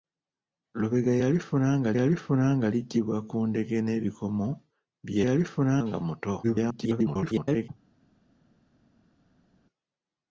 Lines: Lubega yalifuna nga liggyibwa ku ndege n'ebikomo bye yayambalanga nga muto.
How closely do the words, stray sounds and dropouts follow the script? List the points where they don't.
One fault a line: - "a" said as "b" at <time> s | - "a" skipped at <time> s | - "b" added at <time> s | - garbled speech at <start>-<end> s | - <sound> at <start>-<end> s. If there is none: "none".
- "yalifuna nga" added at 2.0 s
- "yayambalanga" said as "yalifuna" at 5.3 s
- garbled speech at 6.4-7.7 s